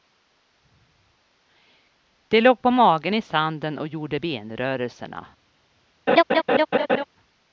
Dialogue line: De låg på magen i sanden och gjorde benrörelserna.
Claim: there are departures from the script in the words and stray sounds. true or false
true